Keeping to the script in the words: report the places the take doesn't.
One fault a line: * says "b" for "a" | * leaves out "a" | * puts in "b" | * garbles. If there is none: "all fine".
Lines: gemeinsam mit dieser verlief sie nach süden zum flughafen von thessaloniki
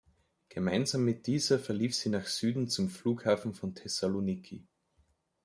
all fine